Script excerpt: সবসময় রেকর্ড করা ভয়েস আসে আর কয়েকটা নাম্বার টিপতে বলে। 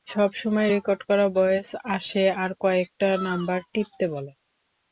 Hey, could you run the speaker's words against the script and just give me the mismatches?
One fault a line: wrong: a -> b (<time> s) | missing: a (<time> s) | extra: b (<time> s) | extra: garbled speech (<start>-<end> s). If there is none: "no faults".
no faults